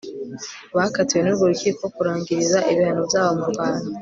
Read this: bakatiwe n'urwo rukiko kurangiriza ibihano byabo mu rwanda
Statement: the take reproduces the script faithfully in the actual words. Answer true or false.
true